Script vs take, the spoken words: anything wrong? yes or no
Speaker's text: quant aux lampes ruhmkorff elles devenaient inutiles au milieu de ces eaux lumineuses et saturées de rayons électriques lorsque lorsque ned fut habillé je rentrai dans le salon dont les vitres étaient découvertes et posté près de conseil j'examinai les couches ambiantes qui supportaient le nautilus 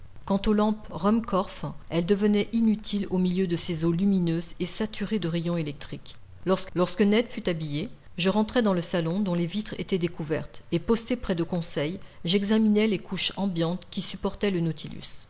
no